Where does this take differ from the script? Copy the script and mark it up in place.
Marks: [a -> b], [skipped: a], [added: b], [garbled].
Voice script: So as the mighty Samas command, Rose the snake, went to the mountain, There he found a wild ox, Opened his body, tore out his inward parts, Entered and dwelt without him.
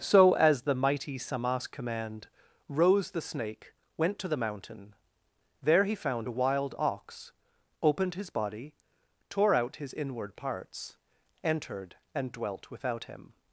So as the mighty Samas command, Rose the snake, went to the mountain, There he found a wild ox, Opened his body, tore out his inward parts, Entered and dwelt without him.